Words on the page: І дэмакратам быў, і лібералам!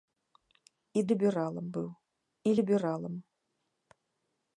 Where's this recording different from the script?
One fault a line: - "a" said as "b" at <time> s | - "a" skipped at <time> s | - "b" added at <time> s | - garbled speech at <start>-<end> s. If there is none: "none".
- "дэмакратам" said as "лібералам" at 1.1 s